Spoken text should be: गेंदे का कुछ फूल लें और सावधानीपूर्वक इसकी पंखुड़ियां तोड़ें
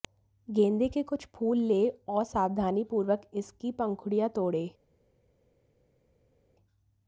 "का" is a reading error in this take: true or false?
true